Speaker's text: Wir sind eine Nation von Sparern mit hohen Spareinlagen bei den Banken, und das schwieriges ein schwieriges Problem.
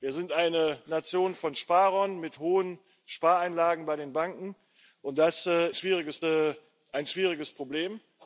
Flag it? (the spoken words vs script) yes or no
no